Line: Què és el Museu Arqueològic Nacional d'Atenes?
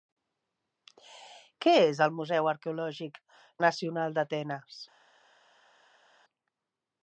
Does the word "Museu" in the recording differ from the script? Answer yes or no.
no